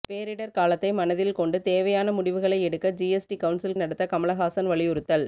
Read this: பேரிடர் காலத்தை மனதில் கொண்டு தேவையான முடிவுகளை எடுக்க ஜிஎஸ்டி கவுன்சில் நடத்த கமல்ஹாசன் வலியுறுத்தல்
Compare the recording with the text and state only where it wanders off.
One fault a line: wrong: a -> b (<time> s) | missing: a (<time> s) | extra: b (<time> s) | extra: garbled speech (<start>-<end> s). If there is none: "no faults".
no faults